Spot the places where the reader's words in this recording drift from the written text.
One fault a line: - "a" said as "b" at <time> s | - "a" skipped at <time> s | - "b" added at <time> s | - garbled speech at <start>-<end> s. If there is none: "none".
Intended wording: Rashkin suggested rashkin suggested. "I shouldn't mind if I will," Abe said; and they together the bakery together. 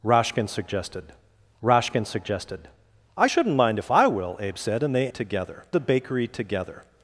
none